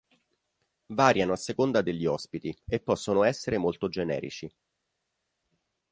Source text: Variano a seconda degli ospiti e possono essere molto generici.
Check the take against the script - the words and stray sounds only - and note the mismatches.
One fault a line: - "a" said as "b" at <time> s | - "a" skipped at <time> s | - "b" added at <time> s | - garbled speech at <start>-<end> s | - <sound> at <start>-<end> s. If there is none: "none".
none